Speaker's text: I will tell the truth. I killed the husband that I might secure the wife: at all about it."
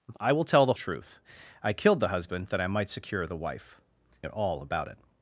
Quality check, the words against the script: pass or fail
pass